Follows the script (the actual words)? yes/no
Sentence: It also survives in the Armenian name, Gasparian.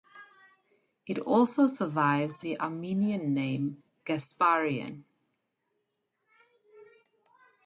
no